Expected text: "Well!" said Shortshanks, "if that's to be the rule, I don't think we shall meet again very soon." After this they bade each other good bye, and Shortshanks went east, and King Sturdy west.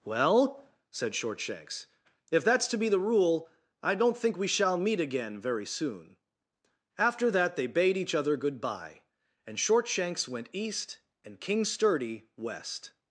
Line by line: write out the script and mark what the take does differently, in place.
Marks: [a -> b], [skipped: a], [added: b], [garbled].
"Well!" said Shortshanks, "if that's to be the rule, I don't think we shall meet again very soon." After [this -> that] they bade each other good bye, and Shortshanks went east, and King Sturdy west.